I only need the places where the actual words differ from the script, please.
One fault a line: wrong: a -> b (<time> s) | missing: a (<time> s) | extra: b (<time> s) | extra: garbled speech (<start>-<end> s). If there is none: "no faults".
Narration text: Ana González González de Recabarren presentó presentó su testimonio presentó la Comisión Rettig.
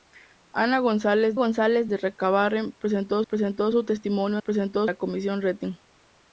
no faults